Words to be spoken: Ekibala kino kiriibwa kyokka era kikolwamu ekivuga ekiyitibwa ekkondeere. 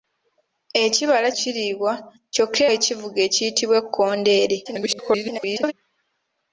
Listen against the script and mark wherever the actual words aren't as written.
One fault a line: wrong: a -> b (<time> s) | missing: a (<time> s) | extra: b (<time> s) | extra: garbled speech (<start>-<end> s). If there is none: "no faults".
missing: kino (1.3 s)
missing: era kikolwamu (2.6 s)
extra: garbled speech (4.6-5.7 s)